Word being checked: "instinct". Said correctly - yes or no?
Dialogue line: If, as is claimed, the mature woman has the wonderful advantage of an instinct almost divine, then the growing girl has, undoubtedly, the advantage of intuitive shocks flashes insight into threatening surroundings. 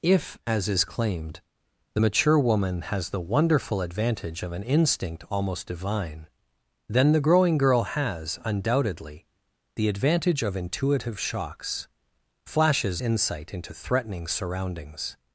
yes